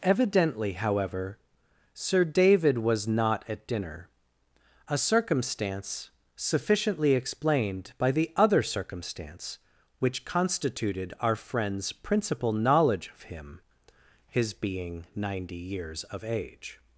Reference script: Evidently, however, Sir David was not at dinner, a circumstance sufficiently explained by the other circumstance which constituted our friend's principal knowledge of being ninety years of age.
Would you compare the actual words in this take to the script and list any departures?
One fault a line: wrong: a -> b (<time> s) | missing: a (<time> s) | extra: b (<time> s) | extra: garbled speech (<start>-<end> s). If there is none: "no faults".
extra: him his (13.2 s)